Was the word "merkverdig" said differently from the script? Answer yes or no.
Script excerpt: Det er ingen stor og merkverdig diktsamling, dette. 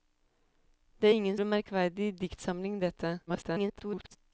no